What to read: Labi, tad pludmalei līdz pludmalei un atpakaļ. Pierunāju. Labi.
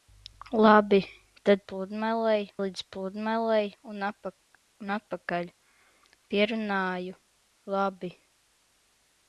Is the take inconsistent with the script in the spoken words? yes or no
no